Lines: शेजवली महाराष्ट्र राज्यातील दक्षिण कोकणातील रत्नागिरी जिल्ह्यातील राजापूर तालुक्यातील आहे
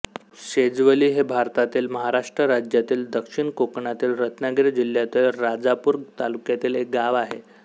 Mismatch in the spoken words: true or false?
true